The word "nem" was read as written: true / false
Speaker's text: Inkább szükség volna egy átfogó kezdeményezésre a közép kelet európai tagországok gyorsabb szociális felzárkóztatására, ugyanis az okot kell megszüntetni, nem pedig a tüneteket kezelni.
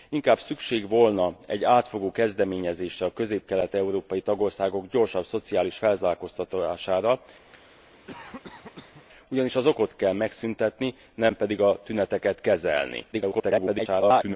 true